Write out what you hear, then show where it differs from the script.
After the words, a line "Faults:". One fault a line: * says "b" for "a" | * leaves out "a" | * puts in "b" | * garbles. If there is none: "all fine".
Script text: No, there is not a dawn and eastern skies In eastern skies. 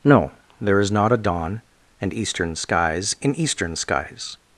No, there is not a dawn and eastern skies In eastern skies.
Faults:
all fine